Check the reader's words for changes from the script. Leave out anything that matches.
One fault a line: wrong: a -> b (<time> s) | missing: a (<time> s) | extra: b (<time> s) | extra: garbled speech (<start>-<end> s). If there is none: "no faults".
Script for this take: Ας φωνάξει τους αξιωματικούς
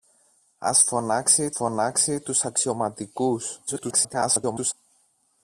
extra: φωνάξει (1.5 s)
extra: garbled speech (3.7-4.7 s)